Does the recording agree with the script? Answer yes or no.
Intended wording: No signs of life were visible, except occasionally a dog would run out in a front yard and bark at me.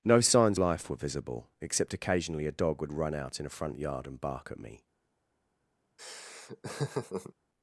no